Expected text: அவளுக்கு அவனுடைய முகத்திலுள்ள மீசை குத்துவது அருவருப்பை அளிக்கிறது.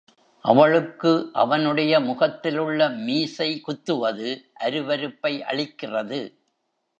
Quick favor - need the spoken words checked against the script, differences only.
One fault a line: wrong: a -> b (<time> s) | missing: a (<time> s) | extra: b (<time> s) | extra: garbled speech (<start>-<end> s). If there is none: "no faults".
no faults